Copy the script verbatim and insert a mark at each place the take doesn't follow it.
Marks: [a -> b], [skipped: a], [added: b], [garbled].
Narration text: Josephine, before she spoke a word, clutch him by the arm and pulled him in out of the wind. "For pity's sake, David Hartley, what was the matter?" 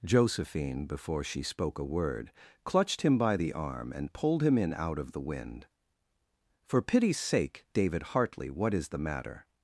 Josephine, before she spoke a word, [clutch -> clutched] him by the arm and pulled him in out of the wind. "For pity's sake, David Hartley, what [was -> is] the matter?"